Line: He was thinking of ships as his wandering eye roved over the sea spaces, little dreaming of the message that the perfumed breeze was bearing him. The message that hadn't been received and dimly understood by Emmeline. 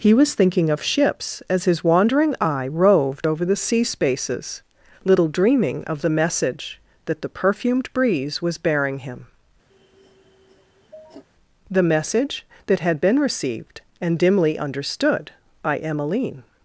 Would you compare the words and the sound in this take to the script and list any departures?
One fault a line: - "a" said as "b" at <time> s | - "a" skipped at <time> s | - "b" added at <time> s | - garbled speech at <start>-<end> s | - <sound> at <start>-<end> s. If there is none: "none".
- sniff at 9.7-11.2 s
- "hadn't" said as "had" at 12.8 s